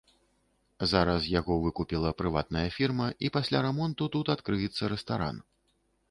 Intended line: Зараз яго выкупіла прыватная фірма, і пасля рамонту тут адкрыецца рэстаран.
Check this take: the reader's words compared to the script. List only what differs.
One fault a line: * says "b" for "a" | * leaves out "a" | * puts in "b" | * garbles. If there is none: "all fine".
all fine